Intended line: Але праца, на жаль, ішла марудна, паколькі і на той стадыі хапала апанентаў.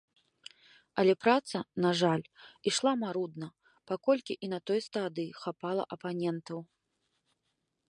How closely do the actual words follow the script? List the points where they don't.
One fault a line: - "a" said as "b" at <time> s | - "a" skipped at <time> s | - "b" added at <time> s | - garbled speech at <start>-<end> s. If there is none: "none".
none